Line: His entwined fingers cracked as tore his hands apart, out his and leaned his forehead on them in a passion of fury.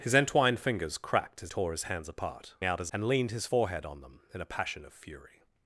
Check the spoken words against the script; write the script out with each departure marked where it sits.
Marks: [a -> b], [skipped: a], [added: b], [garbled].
His entwined fingers cracked as tore his hands apart, out his and leaned his forehead on them in a passion of fury.